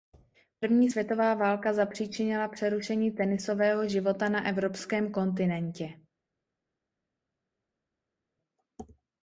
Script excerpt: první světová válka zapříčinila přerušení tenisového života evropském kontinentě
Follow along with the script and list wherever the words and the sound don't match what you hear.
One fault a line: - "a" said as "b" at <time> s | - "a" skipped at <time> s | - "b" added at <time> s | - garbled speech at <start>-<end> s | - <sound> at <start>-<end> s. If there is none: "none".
- "na" added at 4.3 s